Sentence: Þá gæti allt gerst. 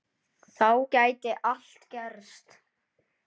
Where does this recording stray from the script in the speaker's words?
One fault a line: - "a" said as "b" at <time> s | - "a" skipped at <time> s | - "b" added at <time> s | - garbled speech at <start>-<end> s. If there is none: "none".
none